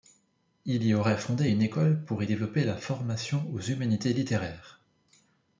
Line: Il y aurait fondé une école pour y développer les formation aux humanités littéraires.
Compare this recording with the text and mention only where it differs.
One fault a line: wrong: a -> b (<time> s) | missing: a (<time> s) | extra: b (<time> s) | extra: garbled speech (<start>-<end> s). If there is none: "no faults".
wrong: les -> la (2.6 s)